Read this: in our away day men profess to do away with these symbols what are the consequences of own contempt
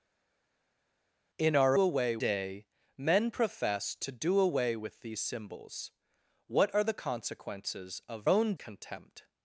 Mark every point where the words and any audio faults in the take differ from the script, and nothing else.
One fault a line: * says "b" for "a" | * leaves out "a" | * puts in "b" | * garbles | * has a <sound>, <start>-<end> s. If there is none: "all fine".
all fine